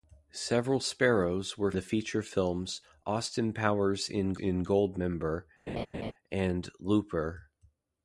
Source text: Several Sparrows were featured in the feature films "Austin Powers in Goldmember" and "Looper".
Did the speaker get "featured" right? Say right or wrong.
wrong